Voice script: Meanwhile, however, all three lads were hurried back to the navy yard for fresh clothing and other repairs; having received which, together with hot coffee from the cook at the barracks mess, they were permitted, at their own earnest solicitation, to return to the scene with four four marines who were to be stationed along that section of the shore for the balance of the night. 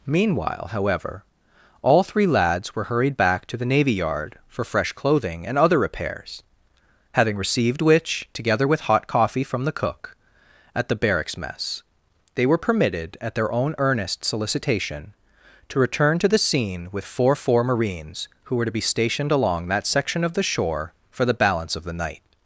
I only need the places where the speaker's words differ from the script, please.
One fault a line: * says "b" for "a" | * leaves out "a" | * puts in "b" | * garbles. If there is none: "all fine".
all fine